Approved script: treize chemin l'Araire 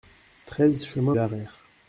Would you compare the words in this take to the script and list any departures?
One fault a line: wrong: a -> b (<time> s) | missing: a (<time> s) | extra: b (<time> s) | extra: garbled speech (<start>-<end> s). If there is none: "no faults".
no faults